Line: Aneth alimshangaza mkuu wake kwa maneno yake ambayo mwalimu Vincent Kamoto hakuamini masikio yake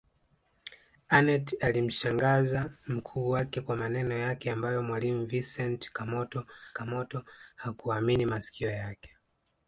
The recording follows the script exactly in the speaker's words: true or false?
false